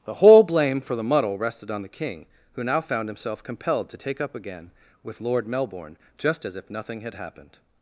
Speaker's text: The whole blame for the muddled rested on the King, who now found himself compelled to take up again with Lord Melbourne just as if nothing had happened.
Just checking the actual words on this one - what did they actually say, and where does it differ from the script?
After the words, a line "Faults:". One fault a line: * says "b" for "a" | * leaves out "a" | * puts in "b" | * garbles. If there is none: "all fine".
The whole blame for the muddle rested on the King, who now found himself compelled to take up again with Lord Melbourne just as if nothing had happened.
Faults:
* says "muddle" for "muddled"